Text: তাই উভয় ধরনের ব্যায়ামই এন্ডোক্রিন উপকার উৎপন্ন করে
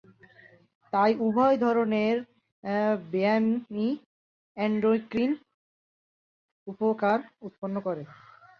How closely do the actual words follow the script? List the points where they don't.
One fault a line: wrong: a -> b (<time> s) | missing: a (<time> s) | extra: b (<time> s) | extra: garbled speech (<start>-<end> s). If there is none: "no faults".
no faults